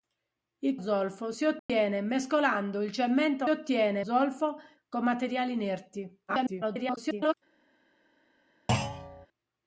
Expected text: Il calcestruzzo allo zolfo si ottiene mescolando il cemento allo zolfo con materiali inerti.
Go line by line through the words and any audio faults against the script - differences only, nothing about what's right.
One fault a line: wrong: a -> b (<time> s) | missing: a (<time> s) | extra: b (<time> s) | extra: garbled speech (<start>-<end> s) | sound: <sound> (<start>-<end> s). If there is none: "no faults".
missing: calcestruzzo allo (0.8 s)
sound: dropout (1.6-1.7 s)
wrong: allo -> ottiene (3.5 s)
extra: garbled speech (6.3-7.3 s)
sound: thud (8.7-9.3 s)